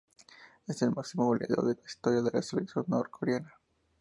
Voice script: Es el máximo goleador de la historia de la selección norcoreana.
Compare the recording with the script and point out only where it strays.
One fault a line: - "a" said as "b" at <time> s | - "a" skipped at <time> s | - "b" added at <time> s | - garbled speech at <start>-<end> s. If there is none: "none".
none